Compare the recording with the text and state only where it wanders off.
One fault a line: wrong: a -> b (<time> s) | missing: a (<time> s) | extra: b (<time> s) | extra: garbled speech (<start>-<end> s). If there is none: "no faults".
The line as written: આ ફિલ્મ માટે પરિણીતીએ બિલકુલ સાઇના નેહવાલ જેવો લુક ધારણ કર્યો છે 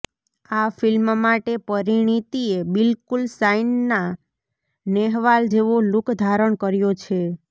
no faults